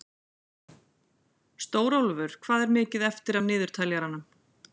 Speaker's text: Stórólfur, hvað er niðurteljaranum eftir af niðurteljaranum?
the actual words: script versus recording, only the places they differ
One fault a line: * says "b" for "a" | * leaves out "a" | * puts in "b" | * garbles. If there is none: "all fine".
* says "mikið" for "niðurteljaranum"